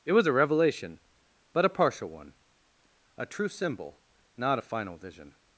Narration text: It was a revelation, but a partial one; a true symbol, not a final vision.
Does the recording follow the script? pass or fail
pass